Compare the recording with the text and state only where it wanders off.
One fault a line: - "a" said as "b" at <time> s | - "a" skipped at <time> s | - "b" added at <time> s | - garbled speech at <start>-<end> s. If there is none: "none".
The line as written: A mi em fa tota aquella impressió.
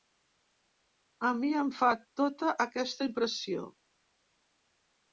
- "aquella" said as "aquesta" at 2.7 s